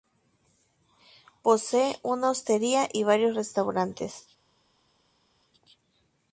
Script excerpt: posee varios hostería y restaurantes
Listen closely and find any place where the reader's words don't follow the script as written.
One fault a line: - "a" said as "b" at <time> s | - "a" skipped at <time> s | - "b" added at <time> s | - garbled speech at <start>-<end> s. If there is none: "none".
- "varios" said as "una" at 2.0 s
- "varios" added at 3.0 s